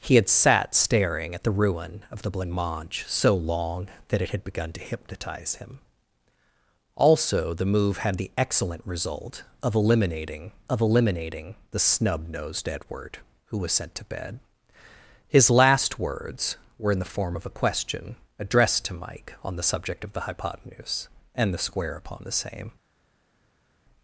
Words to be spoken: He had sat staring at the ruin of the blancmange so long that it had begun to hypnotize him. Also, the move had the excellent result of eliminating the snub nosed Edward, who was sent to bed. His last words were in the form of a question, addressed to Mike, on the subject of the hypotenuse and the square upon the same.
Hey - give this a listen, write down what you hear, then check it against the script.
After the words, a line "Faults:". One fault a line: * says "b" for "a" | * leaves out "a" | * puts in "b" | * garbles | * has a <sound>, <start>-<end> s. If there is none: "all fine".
He had sat staring at the ruin of the blancmange so long that it had begun to hypnotize him. Also, the move had the excellent result of eliminating of eliminating the snub nosed Edward, who was sent to bed. His last words were in the form of a question, addressed to Mike, on the subject of the hypotenuse and the square upon the same.
Faults:
* puts in "of eliminating"